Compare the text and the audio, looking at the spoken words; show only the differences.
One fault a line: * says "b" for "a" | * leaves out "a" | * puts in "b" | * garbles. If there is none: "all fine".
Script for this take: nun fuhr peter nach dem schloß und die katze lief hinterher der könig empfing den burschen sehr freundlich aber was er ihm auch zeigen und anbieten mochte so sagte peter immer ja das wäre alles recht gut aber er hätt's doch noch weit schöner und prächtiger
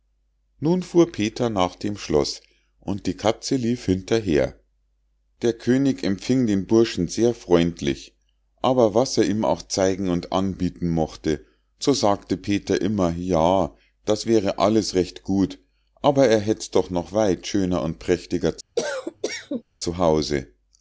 all fine